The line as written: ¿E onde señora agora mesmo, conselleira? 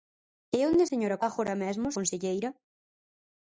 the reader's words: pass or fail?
pass